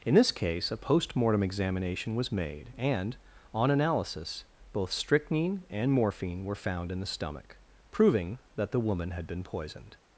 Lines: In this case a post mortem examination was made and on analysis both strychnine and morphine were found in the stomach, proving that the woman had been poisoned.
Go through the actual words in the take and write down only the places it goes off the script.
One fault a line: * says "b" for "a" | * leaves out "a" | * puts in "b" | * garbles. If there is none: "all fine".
all fine